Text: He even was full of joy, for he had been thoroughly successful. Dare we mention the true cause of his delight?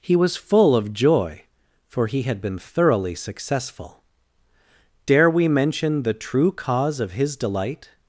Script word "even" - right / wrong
wrong